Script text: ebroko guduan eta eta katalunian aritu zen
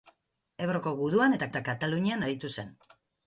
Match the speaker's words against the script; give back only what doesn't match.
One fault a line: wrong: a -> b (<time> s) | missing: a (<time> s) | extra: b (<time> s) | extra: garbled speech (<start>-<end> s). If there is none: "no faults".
no faults